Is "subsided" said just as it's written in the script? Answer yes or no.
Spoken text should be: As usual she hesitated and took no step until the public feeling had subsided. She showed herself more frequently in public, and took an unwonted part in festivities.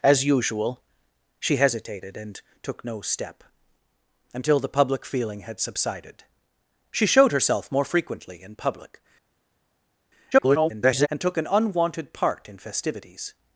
yes